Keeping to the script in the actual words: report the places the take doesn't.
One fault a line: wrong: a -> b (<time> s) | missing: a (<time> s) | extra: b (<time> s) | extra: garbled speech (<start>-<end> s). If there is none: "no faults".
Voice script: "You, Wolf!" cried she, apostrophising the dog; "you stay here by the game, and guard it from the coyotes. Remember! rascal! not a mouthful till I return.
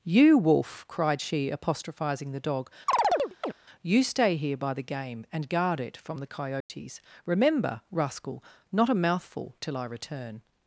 no faults